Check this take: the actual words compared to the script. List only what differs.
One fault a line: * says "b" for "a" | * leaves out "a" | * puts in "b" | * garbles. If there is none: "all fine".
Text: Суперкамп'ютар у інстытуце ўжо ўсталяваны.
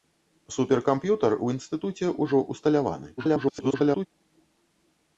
* garbles